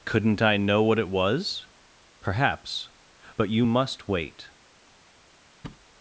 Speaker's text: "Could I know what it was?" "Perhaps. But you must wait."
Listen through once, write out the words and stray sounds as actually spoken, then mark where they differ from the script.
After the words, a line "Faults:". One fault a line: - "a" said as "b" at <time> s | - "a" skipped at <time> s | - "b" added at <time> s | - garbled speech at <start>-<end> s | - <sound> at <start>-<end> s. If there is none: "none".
"Couldn't I know what it was?" "Perhaps. But you must wait."
Faults:
- "Could" said as "Couldn't" at 0.0 s
- thud at 5.6-5.9 s